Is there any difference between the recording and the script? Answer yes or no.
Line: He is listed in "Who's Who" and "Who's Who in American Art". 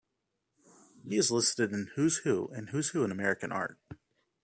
no